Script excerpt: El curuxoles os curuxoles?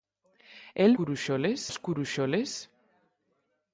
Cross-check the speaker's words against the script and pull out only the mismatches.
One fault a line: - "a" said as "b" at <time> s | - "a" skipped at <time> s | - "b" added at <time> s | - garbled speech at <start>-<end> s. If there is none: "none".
none